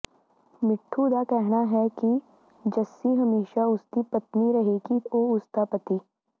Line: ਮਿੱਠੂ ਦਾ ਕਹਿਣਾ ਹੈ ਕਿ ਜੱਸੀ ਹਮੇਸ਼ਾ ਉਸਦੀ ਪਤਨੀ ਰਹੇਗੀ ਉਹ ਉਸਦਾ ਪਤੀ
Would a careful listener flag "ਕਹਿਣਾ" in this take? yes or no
no